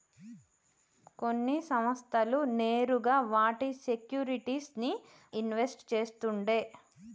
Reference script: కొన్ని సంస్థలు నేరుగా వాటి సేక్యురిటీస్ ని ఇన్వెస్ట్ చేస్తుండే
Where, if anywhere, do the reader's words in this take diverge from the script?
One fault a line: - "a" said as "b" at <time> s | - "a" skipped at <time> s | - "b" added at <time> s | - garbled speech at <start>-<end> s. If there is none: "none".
none